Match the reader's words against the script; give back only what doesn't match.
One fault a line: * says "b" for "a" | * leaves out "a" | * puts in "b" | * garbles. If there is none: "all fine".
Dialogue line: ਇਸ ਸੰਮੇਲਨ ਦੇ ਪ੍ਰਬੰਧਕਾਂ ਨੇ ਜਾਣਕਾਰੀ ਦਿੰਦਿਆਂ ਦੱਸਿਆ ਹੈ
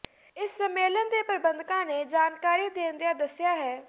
all fine